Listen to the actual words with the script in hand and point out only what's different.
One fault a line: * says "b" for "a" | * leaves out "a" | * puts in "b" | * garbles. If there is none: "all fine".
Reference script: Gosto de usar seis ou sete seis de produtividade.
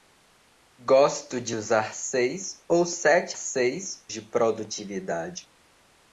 all fine